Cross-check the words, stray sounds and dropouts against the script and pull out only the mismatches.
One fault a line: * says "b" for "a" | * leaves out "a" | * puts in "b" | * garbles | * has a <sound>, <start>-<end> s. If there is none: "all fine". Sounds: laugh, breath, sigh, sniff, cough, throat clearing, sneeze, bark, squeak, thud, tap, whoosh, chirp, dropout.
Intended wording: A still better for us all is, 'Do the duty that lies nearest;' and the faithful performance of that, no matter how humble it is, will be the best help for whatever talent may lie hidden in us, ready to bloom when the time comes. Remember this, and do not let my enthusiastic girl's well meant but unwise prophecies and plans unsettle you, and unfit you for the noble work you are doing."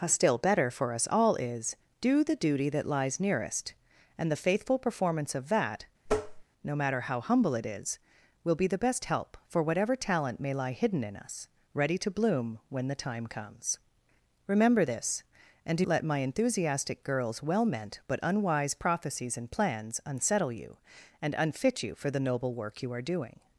* has a tap, 6.1-6.4 s
* leaves out "not"